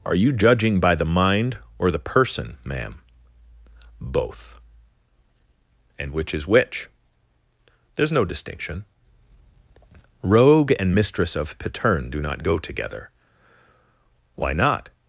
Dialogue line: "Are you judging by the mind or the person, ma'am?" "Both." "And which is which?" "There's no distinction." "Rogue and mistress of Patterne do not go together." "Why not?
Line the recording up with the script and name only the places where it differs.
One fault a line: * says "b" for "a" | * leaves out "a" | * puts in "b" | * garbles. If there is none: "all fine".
all fine